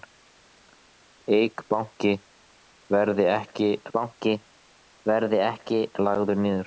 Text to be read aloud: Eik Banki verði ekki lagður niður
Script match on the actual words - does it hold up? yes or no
no